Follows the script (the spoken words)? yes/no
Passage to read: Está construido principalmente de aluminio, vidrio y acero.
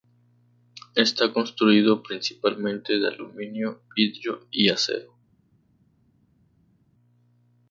yes